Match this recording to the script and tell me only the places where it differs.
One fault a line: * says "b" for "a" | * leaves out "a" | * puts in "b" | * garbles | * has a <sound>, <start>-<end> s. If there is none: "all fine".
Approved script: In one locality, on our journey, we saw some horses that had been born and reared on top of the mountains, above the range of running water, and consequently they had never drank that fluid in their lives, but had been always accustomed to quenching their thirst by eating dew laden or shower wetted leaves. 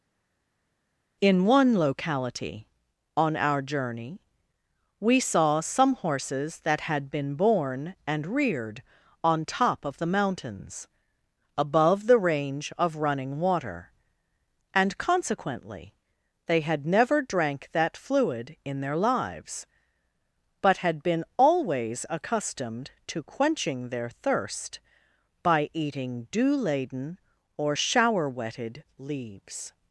all fine